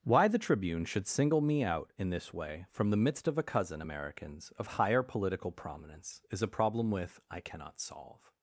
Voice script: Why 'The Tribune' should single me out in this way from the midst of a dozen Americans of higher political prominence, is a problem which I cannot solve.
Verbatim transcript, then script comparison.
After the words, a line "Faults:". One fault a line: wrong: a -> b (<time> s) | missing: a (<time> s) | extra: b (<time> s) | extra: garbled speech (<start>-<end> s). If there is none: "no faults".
Why 'The Tribune' should single me out in this way from the midst of a cousin Americans of higher political prominence, is a problem with I cannot solve.
Faults:
wrong: dozen -> cousin (3.4 s)
wrong: which -> with (6.9 s)